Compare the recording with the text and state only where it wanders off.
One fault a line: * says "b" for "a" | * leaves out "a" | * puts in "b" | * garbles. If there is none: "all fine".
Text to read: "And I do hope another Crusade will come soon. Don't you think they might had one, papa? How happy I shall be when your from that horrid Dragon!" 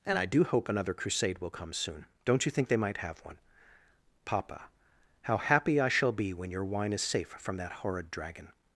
* says "have" for "had"
* puts in "wine is safe"